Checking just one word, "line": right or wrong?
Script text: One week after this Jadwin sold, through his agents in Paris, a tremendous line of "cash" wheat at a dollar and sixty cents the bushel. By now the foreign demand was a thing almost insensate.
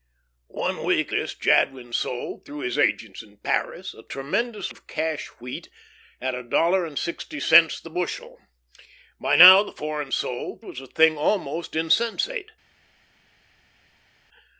wrong